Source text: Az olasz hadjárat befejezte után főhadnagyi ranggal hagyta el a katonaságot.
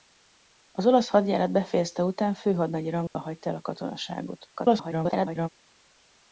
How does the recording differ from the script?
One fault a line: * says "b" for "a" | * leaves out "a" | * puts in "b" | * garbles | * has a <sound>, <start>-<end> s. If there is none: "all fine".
* has a dropout, 3.1-3.1 s
* garbles